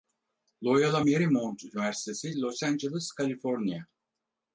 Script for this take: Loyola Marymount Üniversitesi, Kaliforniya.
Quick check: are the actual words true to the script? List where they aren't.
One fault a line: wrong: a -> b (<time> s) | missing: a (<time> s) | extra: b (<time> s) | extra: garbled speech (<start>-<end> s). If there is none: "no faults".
extra: Los Angeles (2.3 s)